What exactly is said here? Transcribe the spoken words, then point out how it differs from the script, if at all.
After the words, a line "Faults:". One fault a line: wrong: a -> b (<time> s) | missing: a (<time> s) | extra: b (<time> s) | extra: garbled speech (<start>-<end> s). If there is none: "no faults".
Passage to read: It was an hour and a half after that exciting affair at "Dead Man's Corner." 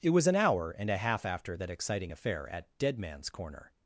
It was an hour and a half after that exciting affair at "Dead Man's Corner."
Faults:
no faults